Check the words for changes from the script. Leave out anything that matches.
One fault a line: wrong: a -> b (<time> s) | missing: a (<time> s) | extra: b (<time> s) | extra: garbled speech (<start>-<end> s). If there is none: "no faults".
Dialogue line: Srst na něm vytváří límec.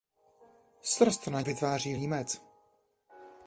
missing: něm (1.4 s)